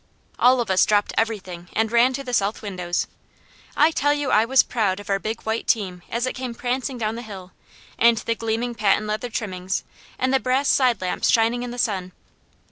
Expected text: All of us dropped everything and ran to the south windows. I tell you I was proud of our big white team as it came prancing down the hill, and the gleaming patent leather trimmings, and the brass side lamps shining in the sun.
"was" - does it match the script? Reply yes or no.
yes